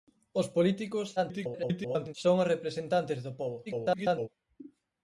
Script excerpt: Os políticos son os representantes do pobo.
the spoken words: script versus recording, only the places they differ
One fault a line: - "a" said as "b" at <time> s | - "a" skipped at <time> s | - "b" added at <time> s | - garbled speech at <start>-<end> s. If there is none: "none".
- garbled speech at 1.2-2.1 s
- garbled speech at 3.7-4.3 s